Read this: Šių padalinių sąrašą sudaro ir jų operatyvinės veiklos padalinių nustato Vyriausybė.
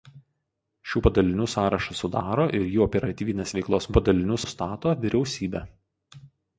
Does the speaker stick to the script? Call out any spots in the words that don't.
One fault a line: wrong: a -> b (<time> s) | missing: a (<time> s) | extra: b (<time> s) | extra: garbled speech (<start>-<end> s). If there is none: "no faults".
no faults